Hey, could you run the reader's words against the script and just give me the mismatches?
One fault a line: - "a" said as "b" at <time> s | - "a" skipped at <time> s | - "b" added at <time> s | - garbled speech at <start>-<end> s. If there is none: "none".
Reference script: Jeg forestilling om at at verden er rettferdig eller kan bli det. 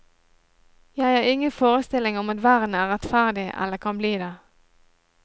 - "har ingen" added at 1.1 s
- "at" skipped at 2.4 s